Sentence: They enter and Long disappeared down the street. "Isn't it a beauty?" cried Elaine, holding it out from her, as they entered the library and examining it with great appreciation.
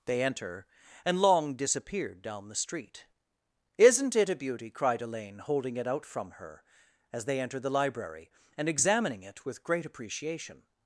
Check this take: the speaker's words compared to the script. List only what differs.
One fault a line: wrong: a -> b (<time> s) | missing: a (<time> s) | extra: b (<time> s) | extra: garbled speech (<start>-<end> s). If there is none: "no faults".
no faults